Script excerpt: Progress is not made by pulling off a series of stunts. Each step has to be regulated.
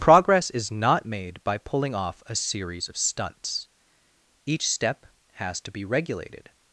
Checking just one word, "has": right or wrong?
right